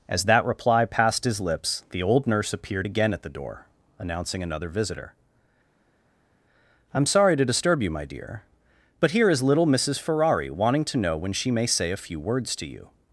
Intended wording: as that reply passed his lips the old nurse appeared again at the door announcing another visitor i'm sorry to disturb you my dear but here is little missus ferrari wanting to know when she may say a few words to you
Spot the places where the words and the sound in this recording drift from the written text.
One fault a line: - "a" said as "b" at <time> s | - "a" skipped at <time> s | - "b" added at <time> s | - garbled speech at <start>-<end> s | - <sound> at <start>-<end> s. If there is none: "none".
none